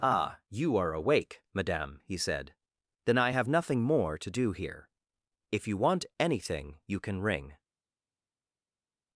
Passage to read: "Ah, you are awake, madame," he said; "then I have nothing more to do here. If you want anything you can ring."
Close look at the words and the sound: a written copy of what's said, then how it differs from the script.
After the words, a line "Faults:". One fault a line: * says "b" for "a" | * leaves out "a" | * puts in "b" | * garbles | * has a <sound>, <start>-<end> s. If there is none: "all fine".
"Ah, you are awake, madame," he said; "then I have nothing more to do here. If you want anything you can ring."
Faults:
all fine